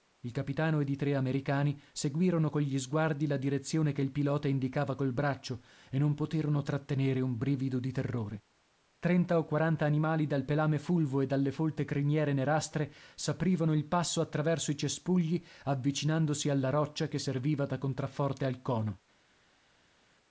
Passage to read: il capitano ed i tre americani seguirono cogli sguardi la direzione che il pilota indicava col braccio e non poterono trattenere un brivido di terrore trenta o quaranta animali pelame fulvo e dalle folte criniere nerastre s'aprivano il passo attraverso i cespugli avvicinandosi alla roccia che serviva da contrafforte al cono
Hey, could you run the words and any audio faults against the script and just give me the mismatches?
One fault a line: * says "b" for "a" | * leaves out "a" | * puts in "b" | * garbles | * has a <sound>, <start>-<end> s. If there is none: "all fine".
* puts in "dal"